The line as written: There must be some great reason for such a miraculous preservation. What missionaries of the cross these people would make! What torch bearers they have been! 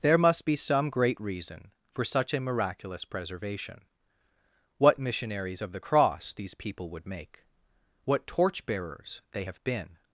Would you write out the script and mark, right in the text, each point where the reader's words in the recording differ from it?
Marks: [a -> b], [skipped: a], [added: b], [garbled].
There must be some great reason for such a miraculous preservation. What missionaries of the cross these people would make! What torch bearers they have been!